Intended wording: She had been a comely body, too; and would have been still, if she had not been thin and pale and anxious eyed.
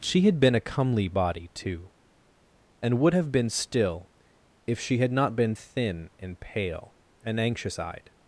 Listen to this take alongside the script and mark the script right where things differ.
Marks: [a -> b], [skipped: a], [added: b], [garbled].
She had been a comely body, too; and would have been still, if she had not been thin and pale and anxious eyed.